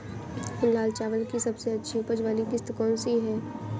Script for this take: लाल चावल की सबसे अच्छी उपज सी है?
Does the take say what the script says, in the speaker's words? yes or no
no